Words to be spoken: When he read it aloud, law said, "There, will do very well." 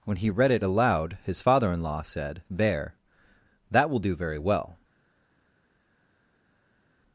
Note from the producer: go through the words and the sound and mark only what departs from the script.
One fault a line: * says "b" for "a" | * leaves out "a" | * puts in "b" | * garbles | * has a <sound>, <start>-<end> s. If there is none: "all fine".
* puts in "his father in"
* puts in "that"